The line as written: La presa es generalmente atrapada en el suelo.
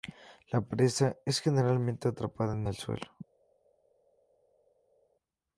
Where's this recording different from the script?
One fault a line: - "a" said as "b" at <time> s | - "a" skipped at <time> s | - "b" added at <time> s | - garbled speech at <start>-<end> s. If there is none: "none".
none